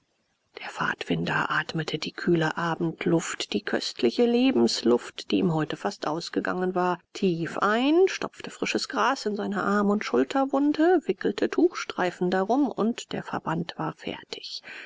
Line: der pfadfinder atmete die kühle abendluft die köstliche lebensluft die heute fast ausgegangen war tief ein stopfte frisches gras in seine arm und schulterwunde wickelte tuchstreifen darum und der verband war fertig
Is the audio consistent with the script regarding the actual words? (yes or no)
no